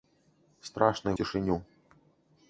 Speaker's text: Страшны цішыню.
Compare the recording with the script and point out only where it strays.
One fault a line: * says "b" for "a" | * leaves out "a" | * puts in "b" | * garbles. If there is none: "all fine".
all fine